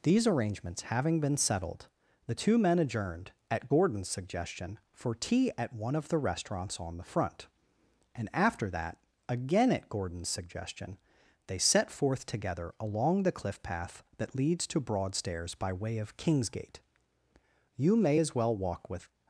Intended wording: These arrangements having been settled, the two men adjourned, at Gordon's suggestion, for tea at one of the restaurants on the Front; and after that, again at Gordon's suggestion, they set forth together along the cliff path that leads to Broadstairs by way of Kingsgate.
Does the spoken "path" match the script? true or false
true